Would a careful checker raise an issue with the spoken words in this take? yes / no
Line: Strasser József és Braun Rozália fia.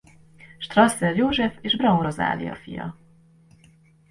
no